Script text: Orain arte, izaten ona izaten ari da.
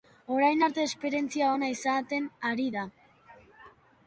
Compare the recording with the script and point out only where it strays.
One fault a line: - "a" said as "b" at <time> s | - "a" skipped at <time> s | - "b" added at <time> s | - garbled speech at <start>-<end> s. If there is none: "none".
- "izaten" said as "esperientzia" at 0.9 s